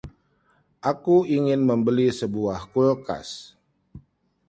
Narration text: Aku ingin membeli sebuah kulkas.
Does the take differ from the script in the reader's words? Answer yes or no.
no